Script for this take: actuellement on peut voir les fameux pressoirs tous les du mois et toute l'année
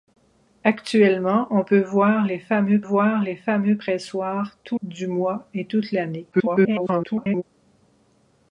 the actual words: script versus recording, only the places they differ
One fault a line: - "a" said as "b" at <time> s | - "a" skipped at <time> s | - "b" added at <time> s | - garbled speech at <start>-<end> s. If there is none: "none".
- "voir les fameux" added at 2.8 s
- "les" skipped at 4.8 s
- garbled speech at 6.3-7.4 s